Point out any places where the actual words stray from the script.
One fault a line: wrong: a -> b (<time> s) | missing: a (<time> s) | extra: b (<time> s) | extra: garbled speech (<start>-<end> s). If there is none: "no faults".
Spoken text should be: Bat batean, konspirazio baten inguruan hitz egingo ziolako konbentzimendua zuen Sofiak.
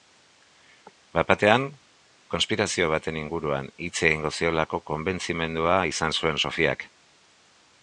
extra: izan (5.9 s)